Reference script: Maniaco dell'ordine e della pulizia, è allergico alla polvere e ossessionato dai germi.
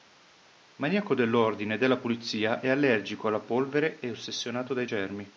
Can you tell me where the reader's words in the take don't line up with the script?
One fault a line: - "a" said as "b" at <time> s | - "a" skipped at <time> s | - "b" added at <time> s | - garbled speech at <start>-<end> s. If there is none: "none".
none